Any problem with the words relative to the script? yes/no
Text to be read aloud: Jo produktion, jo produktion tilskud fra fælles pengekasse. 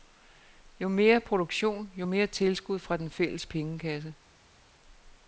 yes